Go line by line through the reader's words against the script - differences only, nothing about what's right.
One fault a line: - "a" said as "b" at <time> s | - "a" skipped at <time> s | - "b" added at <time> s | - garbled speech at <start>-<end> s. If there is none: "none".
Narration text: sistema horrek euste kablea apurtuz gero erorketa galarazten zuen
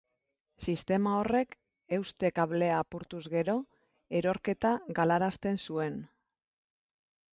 none